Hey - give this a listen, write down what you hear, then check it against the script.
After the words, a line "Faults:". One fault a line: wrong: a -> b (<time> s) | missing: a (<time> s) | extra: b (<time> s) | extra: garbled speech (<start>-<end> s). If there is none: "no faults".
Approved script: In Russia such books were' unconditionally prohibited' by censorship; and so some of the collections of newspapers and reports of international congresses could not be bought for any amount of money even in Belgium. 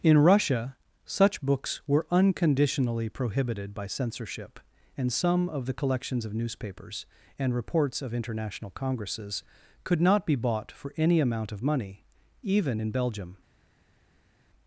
In Russia such books were' unconditionally prohibited' by censorship; and some of the collections of newspapers and reports of international congresses could not be bought for any amount of money even in Belgium.
Faults:
missing: so (5.1 s)